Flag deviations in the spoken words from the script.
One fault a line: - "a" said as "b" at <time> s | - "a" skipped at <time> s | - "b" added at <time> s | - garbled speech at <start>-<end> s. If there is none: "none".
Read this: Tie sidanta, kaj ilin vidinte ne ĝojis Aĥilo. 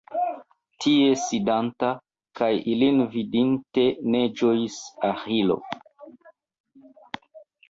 none